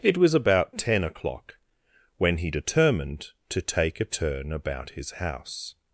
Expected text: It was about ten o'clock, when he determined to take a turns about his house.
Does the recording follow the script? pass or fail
fail